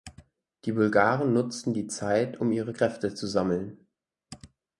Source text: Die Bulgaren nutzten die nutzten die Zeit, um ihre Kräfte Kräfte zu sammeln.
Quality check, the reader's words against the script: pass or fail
fail